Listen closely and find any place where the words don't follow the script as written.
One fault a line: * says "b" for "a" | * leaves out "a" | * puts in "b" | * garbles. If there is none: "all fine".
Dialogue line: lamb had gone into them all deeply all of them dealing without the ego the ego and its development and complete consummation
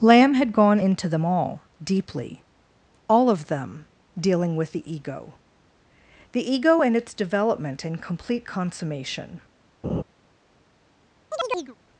* says "with" for "without"